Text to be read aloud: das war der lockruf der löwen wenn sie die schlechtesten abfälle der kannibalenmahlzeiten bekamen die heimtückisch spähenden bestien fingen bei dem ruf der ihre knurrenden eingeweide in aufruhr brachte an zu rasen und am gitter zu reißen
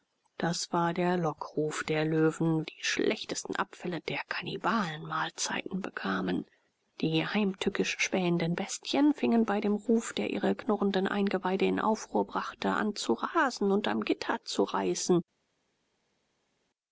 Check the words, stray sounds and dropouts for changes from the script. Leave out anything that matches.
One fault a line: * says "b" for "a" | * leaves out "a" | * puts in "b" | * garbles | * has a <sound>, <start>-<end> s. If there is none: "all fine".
* leaves out "wenn sie"